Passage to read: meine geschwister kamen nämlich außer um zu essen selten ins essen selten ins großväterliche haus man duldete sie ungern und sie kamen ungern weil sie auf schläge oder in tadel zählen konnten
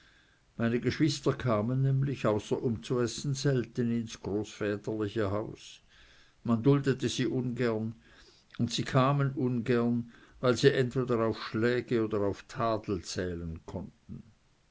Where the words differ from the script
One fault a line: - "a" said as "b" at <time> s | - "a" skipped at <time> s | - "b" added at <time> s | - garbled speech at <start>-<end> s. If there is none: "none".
- "essen selten ins" skipped at 4.2 s
- "entweder" added at 10.7 s
- "in" said as "auf" at 12.2 s